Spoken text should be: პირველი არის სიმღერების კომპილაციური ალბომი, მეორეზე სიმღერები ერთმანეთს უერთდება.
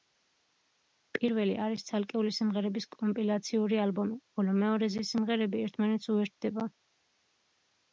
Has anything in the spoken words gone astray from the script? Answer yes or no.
yes